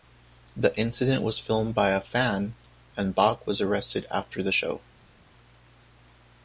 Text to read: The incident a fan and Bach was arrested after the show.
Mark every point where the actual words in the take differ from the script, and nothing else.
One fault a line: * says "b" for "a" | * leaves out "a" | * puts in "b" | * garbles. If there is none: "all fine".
* puts in "was filmed by"